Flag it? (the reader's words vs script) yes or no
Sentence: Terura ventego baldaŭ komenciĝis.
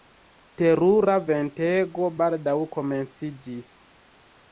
no